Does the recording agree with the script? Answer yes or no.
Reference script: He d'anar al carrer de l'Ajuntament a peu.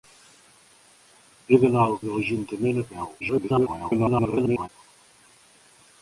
no